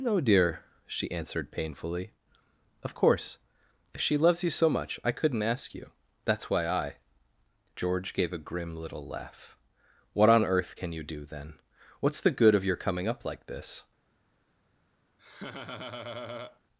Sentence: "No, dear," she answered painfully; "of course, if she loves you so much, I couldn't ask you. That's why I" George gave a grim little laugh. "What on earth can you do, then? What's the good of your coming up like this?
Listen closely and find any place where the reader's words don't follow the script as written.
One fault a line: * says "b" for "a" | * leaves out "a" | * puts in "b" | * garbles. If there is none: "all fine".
all fine